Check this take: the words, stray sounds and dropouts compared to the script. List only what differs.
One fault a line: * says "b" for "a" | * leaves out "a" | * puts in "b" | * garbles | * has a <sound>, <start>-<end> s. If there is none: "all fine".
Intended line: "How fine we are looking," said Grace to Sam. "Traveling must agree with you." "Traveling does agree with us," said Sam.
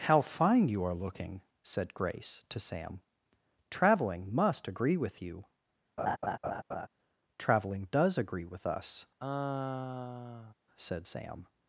* says "you" for "we"
* has a laugh, 6.0-6.9 s
* has a sigh, 9.2-10.5 s